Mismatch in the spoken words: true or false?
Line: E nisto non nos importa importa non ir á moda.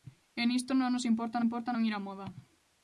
false